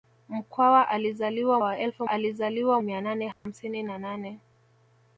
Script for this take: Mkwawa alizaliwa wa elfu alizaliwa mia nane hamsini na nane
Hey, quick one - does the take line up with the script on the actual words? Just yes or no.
yes